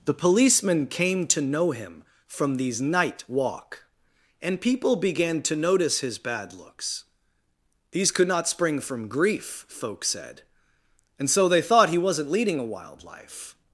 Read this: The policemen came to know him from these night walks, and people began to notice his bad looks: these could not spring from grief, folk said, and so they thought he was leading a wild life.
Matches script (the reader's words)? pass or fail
fail